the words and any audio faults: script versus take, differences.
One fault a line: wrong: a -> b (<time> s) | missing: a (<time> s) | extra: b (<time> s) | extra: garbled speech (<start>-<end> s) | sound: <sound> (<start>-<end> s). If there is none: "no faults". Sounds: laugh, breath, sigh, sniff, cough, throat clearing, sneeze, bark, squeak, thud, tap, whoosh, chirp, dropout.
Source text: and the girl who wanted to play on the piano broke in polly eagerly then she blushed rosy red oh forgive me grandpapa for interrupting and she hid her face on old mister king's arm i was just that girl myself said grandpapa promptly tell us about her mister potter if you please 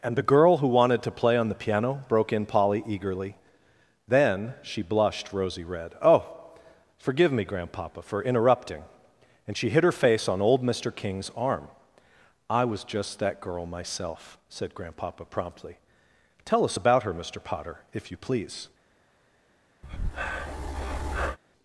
sound: breath (19.8-21.4 s)